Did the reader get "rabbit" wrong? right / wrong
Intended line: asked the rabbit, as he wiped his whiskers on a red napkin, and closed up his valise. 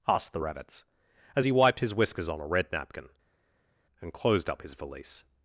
wrong